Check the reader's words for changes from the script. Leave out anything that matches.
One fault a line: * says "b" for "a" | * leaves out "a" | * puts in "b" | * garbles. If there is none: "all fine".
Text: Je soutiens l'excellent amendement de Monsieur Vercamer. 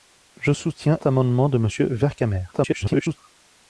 * leaves out "l'excellent"
* garbles